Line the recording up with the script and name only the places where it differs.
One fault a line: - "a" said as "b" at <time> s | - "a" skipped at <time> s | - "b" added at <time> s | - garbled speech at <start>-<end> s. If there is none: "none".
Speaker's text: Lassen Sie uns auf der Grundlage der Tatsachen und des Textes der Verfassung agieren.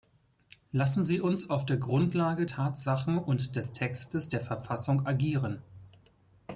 - "der" skipped at 2.5 s